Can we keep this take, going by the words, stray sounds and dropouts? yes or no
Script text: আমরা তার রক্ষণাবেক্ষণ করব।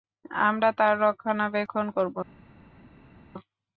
yes